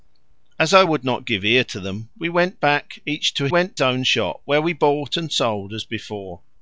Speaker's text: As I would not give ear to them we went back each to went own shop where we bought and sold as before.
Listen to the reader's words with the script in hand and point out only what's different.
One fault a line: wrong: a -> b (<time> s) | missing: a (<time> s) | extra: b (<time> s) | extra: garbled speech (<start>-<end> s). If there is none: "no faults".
no faults